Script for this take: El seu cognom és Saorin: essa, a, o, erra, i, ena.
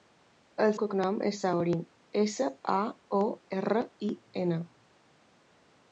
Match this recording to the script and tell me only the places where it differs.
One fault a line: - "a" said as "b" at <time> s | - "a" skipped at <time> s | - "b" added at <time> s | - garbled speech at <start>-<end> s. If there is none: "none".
- "seu" skipped at 0.7 s